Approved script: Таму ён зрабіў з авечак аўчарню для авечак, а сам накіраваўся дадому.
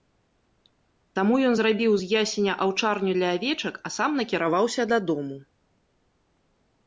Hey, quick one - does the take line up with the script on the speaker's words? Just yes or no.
no